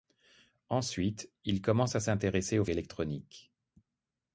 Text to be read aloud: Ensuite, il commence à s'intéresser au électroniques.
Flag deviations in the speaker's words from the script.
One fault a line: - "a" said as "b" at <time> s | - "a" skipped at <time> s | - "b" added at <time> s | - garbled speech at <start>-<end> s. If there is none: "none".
none